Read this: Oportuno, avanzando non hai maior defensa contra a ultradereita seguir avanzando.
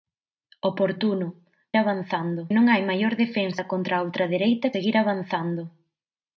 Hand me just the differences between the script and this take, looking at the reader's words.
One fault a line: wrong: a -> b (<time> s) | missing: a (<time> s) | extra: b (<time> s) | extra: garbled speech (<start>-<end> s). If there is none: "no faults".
no faults